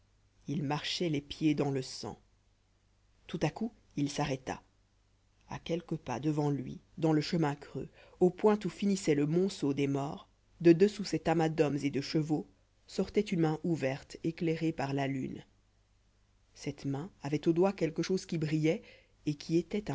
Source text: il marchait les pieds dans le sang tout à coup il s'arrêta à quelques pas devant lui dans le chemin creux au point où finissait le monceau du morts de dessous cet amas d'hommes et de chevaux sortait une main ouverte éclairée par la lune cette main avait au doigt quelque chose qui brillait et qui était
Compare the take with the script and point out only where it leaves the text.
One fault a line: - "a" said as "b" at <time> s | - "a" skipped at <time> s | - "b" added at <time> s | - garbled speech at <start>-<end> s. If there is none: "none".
- "du" said as "des" at 9.7 s